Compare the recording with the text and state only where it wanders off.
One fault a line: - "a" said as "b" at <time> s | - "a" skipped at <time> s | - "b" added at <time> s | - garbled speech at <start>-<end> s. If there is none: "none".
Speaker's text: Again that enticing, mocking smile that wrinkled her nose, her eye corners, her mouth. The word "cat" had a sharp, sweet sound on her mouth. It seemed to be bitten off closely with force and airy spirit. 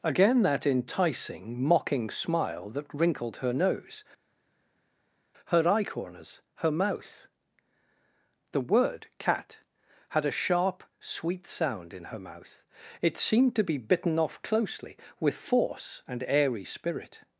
- "on" said as "in" at 11.9 s